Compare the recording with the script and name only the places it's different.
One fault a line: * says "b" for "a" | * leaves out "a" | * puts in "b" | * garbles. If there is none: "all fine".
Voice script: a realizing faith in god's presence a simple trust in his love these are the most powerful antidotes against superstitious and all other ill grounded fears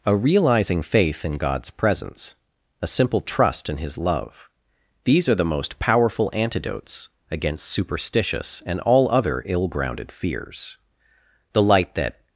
* puts in "the light that"